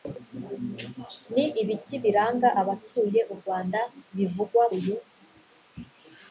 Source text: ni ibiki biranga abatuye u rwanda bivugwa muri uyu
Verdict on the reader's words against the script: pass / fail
fail